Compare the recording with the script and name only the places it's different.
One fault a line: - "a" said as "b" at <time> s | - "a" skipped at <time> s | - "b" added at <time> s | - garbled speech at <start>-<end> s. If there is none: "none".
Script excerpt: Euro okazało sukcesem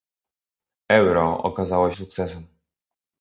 none